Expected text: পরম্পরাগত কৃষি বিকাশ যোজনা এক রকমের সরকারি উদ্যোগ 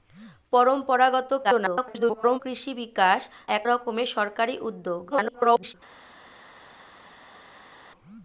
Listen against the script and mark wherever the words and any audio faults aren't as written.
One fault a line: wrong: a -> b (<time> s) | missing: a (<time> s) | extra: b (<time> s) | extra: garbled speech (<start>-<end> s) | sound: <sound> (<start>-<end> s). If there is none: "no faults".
extra: garbled speech (1.4-2.4 s)
missing: যোজনা (3.2 s)
extra: garbled speech (5.1-5.7 s)